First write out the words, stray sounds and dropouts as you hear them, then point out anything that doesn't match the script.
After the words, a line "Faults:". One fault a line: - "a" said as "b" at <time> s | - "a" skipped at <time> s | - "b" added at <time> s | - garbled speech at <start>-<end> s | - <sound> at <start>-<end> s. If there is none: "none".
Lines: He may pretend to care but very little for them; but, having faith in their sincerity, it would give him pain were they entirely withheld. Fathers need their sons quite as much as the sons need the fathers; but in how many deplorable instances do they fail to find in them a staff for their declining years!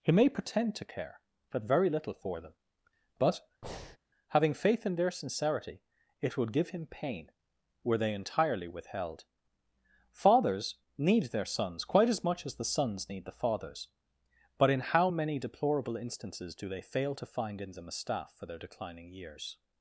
He may pretend to care but very little for them; but, having faith in their sincerity, it would give him pain were they entirely withheld. Fathers need their sons quite as much as the sons need the fathers; but in how many deplorable instances do they fail to find in them a staff for their declining years!
Faults:
- breath at 3.6-4.0 s